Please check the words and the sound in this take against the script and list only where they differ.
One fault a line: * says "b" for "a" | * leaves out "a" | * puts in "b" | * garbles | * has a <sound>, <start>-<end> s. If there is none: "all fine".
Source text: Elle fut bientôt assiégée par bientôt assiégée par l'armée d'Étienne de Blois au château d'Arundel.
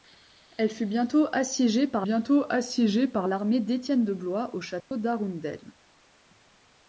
* has a dropout, 4.8-4.9 s